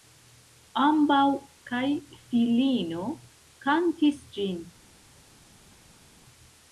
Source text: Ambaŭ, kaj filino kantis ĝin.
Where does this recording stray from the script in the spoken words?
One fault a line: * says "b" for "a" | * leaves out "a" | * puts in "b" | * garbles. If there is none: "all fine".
all fine